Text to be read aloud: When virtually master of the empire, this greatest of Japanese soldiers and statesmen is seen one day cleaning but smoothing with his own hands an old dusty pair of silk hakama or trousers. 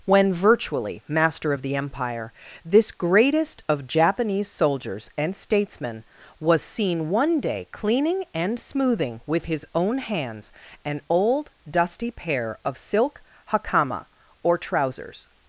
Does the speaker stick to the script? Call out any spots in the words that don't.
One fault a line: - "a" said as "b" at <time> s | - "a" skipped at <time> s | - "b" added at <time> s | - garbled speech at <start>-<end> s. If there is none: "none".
- "is" said as "was" at 6.4 s
- "but" said as "and" at 8.3 s